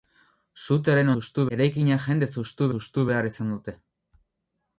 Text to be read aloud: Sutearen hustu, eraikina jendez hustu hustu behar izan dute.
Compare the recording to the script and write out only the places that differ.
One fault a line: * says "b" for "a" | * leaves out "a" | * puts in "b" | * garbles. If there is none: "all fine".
all fine